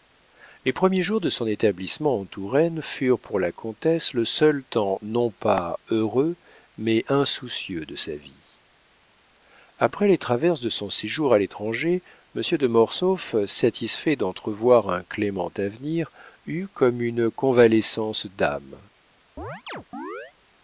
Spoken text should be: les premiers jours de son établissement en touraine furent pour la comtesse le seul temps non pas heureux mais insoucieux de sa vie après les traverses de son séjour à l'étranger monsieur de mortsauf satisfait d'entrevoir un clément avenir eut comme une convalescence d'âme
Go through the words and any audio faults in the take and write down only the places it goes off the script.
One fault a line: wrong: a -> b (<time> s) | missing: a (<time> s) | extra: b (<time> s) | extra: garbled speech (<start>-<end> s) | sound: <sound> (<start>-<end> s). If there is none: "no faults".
sound: chirp (19.4-20.3 s)